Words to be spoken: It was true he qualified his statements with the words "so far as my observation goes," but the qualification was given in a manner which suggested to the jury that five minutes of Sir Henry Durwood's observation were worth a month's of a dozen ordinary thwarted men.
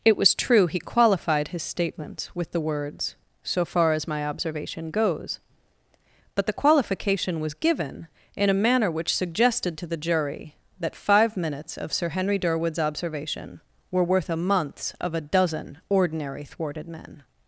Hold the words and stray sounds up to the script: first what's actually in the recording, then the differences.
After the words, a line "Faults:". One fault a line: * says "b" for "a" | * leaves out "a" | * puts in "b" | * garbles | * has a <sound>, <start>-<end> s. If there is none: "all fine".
It was true he qualified his statements with the words "so far as my observation goes," but the qualification was given in a manner which suggested to the jury that five minutes of Sir Henry Durwood's observation were worth a month's of a dozen ordinary thwarted men.
Faults:
all fine